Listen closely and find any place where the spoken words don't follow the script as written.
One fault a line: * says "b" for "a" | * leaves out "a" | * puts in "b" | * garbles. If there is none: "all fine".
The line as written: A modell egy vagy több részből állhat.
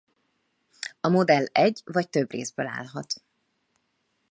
all fine